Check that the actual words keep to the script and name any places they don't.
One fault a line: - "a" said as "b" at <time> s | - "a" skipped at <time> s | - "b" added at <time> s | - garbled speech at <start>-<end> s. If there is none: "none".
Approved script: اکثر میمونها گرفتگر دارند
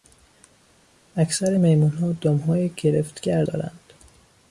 - "دمهای" added at 2.1 s